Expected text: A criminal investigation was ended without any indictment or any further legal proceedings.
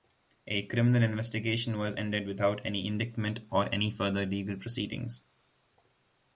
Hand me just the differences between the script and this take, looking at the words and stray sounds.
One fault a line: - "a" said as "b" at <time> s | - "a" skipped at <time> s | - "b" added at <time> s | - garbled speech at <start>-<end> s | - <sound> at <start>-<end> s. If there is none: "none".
none